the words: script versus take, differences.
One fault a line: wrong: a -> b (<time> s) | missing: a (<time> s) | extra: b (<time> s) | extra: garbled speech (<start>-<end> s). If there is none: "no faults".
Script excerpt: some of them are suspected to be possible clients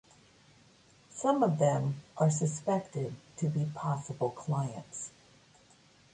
no faults